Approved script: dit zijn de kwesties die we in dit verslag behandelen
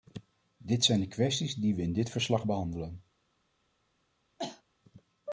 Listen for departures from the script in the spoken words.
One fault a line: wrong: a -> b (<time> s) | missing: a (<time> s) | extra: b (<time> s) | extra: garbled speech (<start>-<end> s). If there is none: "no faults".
no faults